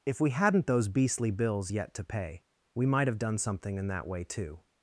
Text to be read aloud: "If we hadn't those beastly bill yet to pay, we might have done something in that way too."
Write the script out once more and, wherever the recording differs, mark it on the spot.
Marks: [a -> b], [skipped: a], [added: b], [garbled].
"If we hadn't those beastly [bill -> bills] yet to pay, we might have done something in that way too."